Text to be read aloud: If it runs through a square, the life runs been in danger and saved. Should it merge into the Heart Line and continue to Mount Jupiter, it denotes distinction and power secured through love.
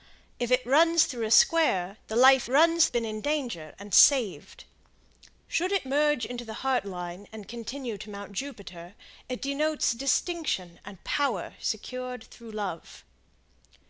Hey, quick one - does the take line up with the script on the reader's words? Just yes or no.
yes